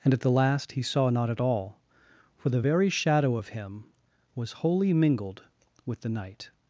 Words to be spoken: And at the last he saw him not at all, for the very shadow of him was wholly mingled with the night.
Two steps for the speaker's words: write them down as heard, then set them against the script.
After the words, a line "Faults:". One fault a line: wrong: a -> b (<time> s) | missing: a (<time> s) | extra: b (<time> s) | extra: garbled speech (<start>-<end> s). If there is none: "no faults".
And at the last he saw not at all, for the very shadow of him was wholly mingled with the night.
Faults:
missing: him (1.1 s)